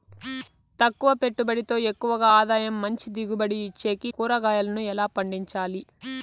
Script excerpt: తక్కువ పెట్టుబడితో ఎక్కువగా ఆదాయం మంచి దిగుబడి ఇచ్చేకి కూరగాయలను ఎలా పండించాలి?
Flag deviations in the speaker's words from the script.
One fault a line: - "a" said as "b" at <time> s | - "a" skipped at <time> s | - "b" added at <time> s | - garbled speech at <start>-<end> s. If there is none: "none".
none